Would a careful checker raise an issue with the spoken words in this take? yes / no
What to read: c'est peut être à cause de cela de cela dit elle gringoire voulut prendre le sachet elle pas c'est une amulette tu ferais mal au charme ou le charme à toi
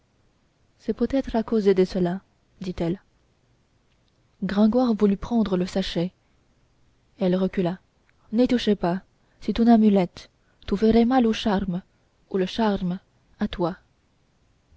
yes